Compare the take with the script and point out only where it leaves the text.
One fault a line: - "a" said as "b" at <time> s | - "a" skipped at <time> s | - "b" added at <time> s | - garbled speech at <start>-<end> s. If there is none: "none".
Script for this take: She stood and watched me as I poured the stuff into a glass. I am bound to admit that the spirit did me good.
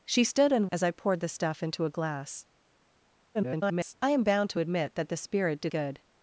- "watched me" skipped at 0.7 s
- garbled speech at 3.3-3.9 s
- "me" skipped at 5.7 s